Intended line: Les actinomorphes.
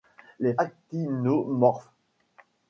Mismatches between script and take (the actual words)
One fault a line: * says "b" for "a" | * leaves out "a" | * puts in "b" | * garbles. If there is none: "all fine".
all fine